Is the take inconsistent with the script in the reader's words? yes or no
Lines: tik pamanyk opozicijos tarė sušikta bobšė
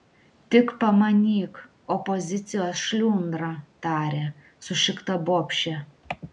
yes